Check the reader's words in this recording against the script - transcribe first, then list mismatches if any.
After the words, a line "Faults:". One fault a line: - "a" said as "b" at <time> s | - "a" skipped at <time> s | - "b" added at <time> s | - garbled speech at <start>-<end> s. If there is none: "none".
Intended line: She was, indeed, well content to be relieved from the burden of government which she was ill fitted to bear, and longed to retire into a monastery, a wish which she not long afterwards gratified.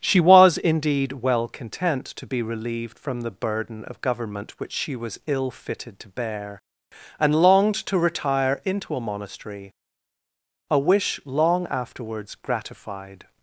She was, indeed, well content to be relieved from the burden of government which she was ill fitted to bear, and longed to retire into a monastery, a wish long afterwards gratified.
Faults:
- "which she not" skipped at 11.2 s